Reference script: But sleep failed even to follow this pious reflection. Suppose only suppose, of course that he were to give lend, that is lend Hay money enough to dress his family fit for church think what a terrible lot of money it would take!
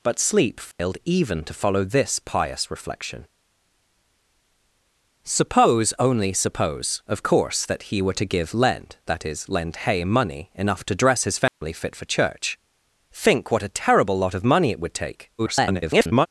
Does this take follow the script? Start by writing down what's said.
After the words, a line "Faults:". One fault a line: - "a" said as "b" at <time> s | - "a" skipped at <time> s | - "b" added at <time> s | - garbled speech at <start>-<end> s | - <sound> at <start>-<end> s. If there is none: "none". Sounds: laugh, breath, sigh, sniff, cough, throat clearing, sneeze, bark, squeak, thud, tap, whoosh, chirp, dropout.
But sleep failed even to follow this pious reflection. Suppose only suppose, of course that he were to give lend, that is lend Hay money enough to dress his family fit for church think what a terrible lot of money it would take! [garbled]
Faults:
- dropout at 0.7-0.8 s
- dropout at 11.5-11.6 s
- garbled speech at 15.4-16.3 s